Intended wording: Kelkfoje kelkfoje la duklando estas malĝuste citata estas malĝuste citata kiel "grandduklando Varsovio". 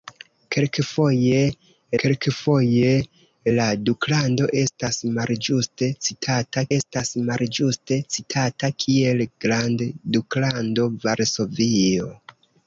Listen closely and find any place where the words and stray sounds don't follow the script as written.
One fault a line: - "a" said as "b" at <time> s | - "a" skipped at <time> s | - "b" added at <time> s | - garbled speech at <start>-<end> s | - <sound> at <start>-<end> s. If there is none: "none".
none